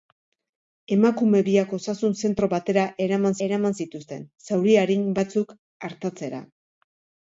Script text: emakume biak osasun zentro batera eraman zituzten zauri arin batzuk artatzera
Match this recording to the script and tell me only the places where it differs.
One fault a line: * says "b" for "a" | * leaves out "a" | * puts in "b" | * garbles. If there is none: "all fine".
* puts in "eraman"